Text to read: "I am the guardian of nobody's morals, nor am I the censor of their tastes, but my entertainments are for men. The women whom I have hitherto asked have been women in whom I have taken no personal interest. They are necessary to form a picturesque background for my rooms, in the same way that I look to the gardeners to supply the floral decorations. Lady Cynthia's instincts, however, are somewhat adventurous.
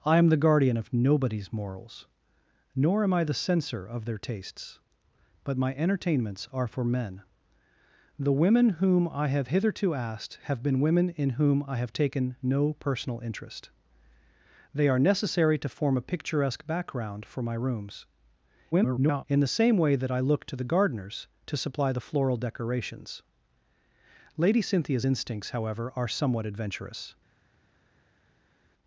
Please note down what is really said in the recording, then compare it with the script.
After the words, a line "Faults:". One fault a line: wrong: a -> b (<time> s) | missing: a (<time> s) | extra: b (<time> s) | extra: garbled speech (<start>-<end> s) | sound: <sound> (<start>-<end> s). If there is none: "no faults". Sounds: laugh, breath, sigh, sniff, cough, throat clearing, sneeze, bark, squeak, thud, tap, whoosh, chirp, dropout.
"I am the guardian of nobody's morals, nor am I the censor of their tastes, but my entertainments are for men. The women whom I have hitherto asked have been women in whom I have taken no personal interest. They are necessary to form a picturesque background for my rooms, [garbled] in the same way that I look to the gardeners to supply the floral decorations. Lady Cynthia's instincts, however, are somewhat adventurous.
Faults:
extra: garbled speech (18.7-19.2 s)